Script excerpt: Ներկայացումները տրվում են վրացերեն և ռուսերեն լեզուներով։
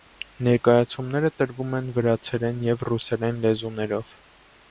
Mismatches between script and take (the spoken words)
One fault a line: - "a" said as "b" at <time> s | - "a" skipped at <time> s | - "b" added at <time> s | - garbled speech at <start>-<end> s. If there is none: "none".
none